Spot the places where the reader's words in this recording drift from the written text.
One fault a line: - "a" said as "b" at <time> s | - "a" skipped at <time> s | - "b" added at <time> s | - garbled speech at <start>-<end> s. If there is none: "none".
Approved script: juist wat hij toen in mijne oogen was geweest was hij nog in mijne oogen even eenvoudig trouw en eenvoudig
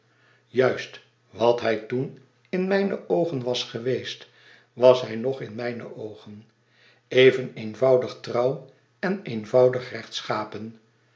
none